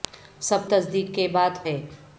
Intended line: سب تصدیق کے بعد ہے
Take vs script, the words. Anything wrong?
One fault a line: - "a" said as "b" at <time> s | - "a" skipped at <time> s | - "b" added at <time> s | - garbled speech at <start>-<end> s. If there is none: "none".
none